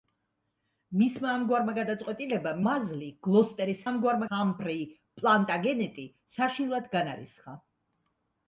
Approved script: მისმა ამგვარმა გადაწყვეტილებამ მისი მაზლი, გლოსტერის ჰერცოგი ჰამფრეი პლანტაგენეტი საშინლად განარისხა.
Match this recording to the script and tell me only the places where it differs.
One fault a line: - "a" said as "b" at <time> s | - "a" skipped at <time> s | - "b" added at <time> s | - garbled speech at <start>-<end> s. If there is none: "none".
- "მისი" skipped at 2.6 s
- "ჰერცოგი" said as "ამგვარმა" at 3.9 s